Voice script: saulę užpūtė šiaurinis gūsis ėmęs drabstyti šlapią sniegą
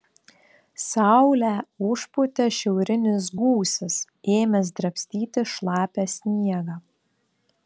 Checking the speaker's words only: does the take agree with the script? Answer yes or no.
yes